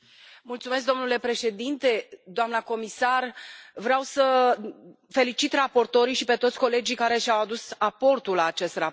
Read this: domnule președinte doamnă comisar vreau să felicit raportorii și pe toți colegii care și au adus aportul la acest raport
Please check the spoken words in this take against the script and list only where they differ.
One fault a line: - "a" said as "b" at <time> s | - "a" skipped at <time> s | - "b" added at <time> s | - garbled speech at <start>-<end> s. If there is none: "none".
none